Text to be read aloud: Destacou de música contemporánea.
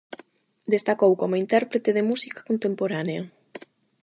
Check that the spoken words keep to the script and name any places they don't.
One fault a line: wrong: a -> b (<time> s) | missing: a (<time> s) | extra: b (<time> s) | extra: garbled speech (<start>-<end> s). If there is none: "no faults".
extra: como intérprete (1.2 s)